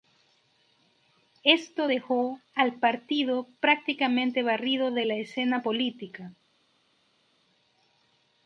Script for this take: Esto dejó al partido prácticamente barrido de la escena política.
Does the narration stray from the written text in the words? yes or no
no